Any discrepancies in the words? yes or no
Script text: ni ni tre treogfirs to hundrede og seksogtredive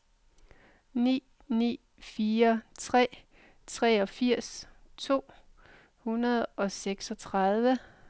yes